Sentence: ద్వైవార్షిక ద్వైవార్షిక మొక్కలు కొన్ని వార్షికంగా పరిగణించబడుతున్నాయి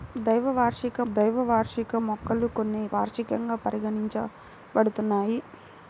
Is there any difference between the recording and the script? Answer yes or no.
no